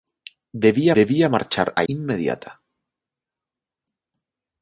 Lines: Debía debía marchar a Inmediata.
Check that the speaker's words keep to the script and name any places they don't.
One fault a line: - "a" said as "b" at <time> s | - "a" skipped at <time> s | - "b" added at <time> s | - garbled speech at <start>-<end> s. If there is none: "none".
none